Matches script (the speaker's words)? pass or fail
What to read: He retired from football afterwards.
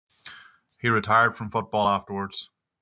pass